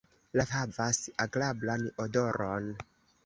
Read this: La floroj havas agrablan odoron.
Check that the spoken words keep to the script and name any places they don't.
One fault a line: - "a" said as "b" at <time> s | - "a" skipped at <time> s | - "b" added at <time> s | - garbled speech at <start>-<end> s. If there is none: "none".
- "floroj" skipped at 0.5 s